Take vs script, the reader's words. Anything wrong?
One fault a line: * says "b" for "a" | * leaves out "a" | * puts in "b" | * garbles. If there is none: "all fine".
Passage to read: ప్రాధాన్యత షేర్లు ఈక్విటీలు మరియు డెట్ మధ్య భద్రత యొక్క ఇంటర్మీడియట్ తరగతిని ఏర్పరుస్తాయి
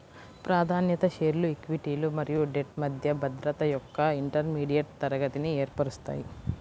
all fine